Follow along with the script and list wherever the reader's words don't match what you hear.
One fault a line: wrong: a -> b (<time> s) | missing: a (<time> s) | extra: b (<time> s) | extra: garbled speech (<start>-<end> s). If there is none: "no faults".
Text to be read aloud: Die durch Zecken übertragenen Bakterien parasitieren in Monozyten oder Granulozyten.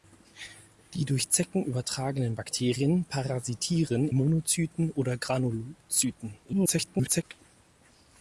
missing: in (4.1 s)
extra: garbled speech (6.5-7.2 s)